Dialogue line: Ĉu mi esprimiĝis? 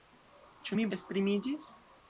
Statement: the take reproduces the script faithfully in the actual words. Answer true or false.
true